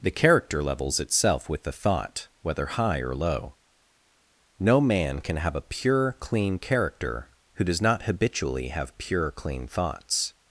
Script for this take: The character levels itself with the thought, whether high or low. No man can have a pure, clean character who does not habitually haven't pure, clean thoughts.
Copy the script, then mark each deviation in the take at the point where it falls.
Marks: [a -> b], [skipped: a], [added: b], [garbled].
The character levels itself with the thought, whether high or low. No man can have a pure, clean character who does not habitually [haven't -> have] pure, clean thoughts.